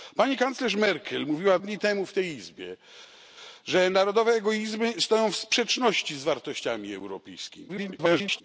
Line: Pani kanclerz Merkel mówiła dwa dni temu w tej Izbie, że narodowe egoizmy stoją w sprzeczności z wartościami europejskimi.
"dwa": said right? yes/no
no